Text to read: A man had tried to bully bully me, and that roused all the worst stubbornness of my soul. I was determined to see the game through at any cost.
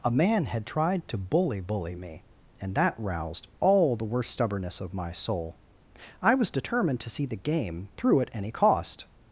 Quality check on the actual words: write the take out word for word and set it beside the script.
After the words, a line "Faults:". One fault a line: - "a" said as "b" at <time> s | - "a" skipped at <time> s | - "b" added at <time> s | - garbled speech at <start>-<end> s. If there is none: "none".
A man had tried to bully bully me, and that roused all the worst stubbornness of my soul. I was determined to see the game through at any cost.
Faults:
none